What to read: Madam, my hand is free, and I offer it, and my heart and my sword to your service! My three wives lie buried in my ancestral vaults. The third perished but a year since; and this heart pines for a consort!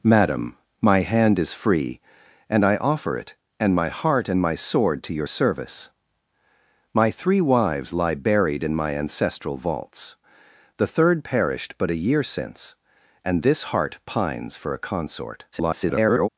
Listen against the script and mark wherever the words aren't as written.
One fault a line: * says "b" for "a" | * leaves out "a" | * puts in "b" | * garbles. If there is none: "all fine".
* garbles